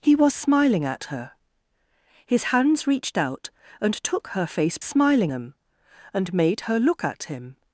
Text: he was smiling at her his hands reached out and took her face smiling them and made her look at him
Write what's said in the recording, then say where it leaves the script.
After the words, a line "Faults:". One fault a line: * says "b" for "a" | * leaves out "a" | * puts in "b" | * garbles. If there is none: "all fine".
he was smiling at her his hands reached out and took her face smiling them and made her look at him
Faults:
all fine